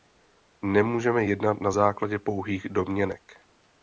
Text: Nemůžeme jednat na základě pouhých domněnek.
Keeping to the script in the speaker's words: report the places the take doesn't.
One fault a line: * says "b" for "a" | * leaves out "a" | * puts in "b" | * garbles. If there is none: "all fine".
all fine